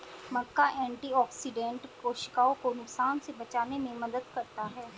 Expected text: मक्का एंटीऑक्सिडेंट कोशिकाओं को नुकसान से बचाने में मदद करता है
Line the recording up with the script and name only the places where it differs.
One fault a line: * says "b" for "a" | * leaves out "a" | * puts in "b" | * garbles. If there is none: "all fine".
all fine